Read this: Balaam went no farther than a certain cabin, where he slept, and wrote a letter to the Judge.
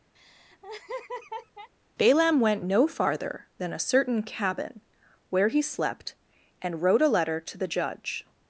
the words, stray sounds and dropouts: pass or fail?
fail